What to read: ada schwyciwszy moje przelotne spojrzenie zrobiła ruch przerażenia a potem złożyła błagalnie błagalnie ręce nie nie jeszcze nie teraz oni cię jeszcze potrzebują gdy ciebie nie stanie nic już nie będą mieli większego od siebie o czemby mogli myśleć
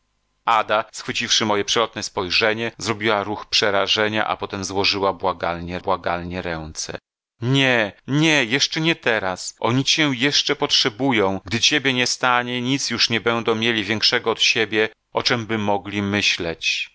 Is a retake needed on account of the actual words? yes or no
no